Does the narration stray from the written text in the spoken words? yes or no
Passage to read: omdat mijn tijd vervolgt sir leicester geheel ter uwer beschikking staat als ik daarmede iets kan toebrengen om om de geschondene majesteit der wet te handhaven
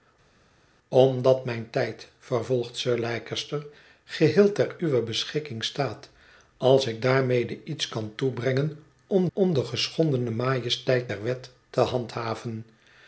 no